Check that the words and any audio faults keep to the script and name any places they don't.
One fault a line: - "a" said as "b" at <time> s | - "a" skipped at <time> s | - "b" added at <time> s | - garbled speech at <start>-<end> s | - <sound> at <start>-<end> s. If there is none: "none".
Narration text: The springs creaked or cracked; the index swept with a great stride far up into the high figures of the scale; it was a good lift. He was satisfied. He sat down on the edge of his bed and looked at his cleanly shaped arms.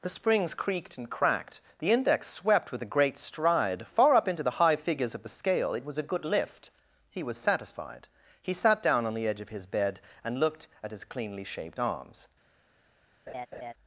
- "or" said as "and" at 1.0 s
- laugh at 13.3-13.7 s